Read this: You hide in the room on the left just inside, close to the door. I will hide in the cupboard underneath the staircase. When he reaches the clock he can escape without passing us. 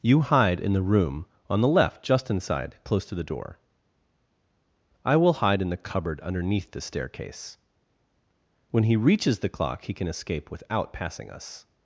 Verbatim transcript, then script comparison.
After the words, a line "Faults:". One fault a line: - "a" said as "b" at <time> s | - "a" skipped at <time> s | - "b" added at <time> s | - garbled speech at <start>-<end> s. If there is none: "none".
You hide in the room on the left just inside, close to the door. I will hide in the cupboard underneath the staircase. When he reaches the clock he can escape without passing us.
Faults:
none